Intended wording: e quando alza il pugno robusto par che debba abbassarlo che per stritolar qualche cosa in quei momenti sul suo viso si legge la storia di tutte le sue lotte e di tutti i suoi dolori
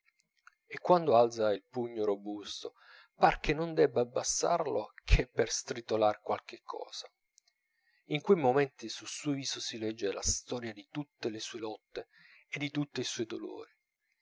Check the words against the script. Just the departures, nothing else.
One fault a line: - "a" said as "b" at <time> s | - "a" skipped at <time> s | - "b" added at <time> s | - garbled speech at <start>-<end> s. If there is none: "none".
- "non" added at 3.5 s